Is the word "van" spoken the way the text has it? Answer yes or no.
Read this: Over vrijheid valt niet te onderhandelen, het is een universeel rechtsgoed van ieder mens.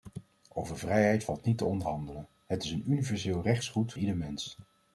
no